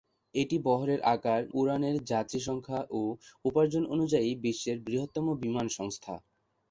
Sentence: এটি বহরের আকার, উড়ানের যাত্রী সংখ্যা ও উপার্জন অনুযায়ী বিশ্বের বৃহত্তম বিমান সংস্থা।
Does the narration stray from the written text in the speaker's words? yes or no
no